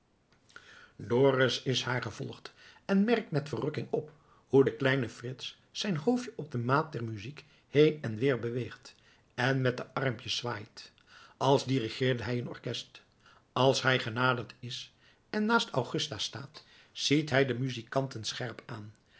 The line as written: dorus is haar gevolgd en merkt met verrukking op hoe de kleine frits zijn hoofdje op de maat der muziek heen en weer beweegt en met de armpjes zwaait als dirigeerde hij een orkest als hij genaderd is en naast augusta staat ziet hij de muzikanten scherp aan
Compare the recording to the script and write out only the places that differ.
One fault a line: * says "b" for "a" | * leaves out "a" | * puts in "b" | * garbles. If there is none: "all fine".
all fine